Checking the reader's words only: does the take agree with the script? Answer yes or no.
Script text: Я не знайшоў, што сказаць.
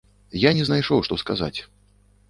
yes